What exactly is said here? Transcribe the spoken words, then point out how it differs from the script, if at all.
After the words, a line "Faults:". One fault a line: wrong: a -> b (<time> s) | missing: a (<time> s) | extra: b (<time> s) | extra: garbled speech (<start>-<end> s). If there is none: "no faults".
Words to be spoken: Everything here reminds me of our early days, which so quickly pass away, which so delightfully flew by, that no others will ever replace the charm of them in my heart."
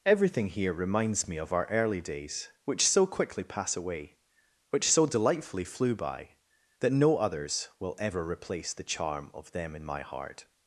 Everything here reminds me of our early days, which so quickly pass away, which so delightfully flew by, that no others will ever replace the charm of them in my heart."
Faults:
no faults